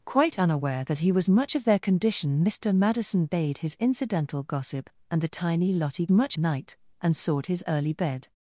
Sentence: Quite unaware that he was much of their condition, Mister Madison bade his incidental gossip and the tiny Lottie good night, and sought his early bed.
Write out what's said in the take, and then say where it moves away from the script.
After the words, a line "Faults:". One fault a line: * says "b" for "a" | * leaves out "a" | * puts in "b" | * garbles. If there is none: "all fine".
Quite unaware that he was much of their condition, Mister Madison bade his incidental gossip and the tiny Lottie much night, and sought his early bed.
Faults:
* says "much" for "good"